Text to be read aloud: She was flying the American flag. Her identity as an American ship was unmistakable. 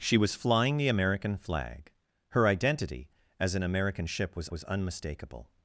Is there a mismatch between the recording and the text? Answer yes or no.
yes